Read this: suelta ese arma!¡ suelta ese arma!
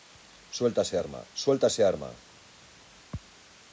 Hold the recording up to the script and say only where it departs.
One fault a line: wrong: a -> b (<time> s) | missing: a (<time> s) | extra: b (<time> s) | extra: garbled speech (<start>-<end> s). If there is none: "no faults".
no faults